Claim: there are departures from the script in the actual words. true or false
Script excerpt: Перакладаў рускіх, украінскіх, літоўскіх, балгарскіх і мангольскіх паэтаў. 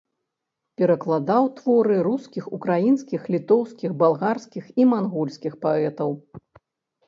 true